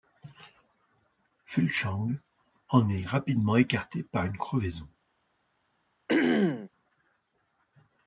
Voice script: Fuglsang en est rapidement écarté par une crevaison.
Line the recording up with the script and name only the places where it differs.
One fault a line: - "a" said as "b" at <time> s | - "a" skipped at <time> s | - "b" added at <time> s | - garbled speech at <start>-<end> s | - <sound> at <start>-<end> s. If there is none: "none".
- throat clearing at 6.1-6.7 s